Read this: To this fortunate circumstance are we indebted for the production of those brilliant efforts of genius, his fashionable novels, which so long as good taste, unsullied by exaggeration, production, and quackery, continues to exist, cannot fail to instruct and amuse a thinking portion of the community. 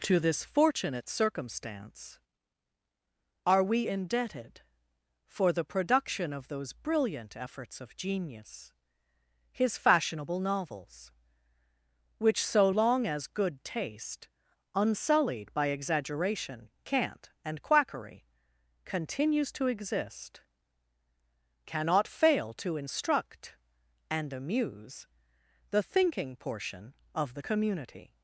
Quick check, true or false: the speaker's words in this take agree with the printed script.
false